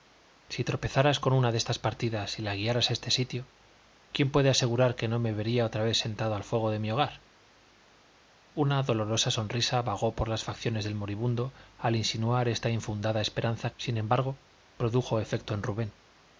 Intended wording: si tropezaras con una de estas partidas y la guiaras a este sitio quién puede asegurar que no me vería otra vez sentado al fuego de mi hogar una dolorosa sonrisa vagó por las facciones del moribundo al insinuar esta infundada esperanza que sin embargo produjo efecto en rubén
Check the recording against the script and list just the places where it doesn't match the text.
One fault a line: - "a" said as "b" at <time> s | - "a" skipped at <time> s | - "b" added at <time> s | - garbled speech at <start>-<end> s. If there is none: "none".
- "que" skipped at 13.7 s